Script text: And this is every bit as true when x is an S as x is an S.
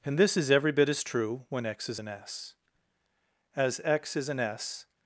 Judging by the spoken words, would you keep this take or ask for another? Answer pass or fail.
pass